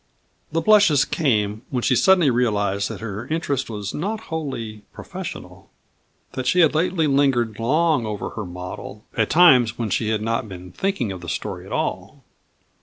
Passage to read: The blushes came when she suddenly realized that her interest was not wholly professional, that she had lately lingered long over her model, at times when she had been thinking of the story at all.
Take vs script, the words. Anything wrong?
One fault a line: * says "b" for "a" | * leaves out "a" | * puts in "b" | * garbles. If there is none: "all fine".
* puts in "not"